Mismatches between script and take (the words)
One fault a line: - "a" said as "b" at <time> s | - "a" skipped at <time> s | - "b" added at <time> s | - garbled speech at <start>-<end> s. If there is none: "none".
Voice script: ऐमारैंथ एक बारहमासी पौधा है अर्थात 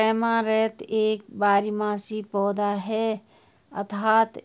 none